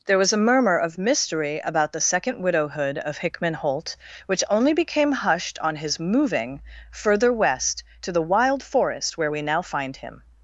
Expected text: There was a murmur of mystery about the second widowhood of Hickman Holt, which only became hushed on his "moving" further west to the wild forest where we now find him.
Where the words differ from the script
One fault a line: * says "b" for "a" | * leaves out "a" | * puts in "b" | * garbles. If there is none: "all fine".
all fine